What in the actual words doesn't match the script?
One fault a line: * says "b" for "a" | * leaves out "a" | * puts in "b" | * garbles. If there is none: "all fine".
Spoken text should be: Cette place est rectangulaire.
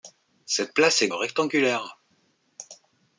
all fine